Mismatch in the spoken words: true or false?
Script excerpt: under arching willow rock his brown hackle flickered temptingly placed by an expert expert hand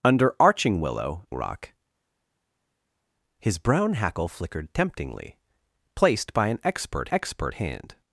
false